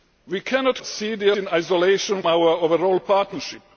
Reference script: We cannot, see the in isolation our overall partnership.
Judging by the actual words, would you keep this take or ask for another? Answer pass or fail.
pass